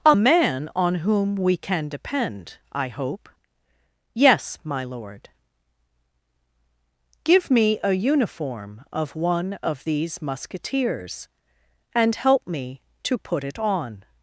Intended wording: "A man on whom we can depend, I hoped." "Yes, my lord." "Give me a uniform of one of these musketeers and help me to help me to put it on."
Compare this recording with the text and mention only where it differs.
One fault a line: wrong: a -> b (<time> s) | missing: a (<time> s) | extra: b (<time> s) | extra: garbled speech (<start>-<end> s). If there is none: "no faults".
wrong: hoped -> hope (2.9 s)
missing: help me to (13.2 s)